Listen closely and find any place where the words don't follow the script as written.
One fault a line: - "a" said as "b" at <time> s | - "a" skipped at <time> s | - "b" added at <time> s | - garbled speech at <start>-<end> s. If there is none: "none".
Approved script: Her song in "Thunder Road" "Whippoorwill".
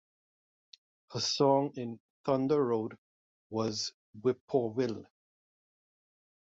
- "was" added at 3.5 s